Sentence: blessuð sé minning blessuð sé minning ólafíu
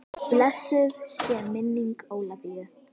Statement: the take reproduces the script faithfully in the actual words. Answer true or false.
false